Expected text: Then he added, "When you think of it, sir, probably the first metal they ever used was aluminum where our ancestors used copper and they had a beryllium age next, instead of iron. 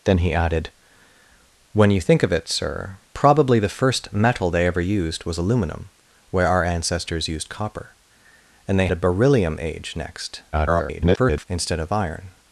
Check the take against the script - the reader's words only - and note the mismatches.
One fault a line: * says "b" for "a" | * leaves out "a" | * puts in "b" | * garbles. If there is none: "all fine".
* leaves out "had"
* garbles